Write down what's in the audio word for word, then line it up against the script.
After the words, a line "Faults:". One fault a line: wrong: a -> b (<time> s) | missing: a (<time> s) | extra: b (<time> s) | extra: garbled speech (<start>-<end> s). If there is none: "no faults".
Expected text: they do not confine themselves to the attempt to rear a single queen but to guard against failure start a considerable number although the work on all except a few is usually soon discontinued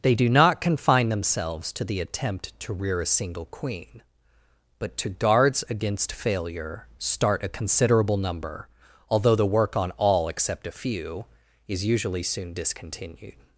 they do not confine themselves to the attempt to rear a single queen but to guards against failure start a considerable number although the work on all except a few is usually soon discontinued
Faults:
wrong: guard -> guards (5.1 s)